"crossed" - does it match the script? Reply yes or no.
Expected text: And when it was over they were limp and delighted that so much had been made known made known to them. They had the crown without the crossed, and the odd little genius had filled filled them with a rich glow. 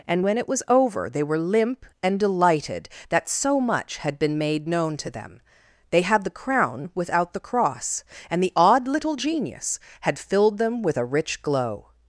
no